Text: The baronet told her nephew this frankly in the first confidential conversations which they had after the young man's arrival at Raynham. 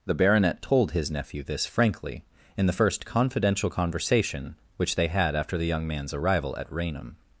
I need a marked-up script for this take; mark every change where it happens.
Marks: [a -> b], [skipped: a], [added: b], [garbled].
The baronet told [her -> his] nephew this frankly in the first confidential [conversations -> conversation] which they had after the young man's arrival at Raynham.